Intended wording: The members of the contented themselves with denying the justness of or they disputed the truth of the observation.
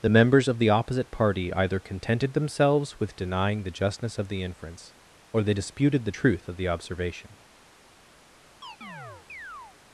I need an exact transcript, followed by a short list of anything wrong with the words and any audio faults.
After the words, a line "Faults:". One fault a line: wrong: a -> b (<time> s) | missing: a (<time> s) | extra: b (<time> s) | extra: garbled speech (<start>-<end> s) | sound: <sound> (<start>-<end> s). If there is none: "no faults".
The members of the opposite party either contented themselves with denying the justness of the inference, or they disputed the truth of the observation.
Faults:
extra: opposite party either (0.7 s)
extra: the inference (4.3 s)
sound: chirp (8.6-9.8 s)